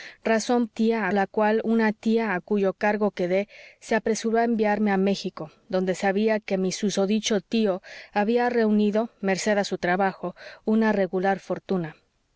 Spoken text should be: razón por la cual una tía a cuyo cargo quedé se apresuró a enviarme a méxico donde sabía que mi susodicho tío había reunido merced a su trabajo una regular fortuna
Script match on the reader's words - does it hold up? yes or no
no